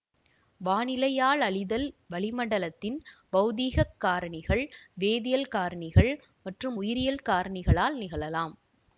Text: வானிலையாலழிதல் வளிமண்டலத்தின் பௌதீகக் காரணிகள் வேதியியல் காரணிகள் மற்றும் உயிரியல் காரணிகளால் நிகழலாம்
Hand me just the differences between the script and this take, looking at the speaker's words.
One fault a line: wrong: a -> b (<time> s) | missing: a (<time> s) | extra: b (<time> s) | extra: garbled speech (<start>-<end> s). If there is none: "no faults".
no faults